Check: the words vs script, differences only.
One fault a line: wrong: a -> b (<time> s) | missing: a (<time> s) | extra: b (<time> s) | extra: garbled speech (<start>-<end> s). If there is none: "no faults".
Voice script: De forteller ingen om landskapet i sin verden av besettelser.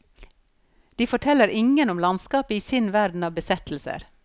no faults